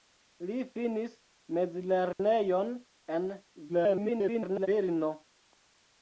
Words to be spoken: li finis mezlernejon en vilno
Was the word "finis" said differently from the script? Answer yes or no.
no